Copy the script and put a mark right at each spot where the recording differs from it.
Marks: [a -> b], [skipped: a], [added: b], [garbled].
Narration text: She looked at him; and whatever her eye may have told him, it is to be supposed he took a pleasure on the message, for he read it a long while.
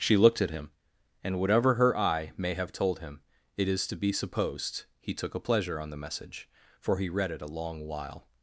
She looked at him; and whatever her eye may have told him, it is to be supposed he took a pleasure on the message, for he read it a long while.